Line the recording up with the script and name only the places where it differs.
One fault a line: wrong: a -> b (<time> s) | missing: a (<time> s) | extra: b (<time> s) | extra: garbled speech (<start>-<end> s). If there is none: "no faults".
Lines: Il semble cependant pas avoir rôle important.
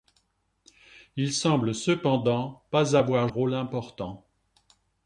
no faults